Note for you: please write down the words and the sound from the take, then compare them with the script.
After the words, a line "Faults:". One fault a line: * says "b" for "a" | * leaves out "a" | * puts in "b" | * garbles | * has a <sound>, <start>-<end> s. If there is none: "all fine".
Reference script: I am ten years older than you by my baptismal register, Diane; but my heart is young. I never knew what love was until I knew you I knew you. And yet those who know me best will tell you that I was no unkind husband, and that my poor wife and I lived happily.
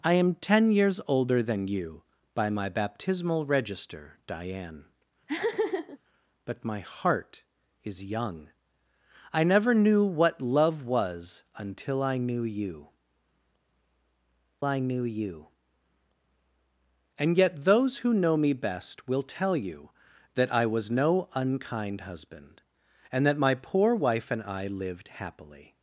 I am ten years older than you by my baptismal register, Diane; but my heart is young. I never knew what love was until I knew you I knew you. And yet those who know me best will tell you that I was no unkind husband, and that my poor wife and I lived happily.
Faults:
* has a laugh, 5.3-6.0 s